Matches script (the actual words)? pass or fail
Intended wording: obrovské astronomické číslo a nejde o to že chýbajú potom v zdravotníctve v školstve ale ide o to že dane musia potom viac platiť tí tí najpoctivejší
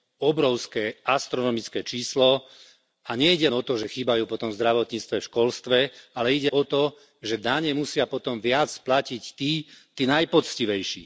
pass